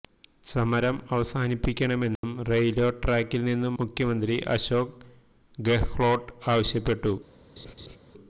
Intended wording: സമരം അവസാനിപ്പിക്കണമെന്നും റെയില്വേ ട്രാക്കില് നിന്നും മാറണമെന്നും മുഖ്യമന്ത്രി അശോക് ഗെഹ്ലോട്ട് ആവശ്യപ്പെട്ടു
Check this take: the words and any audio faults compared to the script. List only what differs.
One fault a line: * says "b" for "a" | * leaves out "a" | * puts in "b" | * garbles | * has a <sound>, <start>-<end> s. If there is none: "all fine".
* has a dropout, 2.2-2.2 s
* leaves out "മാറണമെന്നും"
* has a laugh, 7.6-8.0 s